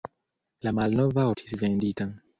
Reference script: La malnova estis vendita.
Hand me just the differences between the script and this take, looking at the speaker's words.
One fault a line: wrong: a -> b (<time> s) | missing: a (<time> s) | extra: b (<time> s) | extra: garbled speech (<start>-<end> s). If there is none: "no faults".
no faults